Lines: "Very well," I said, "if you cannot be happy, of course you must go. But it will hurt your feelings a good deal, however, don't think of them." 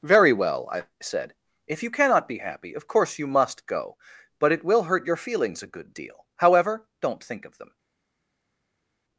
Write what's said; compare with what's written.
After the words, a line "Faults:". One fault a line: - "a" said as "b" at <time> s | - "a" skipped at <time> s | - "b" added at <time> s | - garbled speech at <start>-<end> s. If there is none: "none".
"Very well," I said, "if you cannot be happy, of course you must go. But it will hurt your feelings a good deal, however, don't think of them."
Faults:
none